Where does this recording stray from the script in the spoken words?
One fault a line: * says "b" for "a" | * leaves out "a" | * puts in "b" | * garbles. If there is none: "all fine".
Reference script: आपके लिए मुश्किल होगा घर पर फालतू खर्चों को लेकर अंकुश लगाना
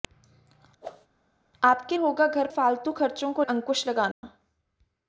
* leaves out "लिए मुश्किल"
* leaves out "पर"
* leaves out "लेकर"